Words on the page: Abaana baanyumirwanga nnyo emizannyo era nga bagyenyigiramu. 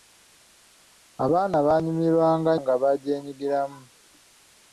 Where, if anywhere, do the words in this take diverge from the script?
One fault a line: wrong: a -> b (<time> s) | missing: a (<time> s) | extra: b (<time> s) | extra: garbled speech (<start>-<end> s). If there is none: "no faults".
missing: nnyo emizannyo era (2.5 s)